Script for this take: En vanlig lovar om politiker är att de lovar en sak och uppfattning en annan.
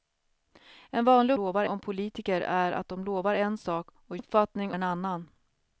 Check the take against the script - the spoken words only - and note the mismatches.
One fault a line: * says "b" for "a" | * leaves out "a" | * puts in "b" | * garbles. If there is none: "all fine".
all fine